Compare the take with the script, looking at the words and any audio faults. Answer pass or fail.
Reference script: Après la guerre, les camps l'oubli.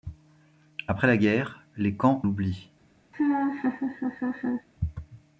fail